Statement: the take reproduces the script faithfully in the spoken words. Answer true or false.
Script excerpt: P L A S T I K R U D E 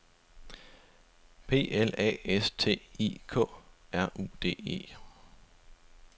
true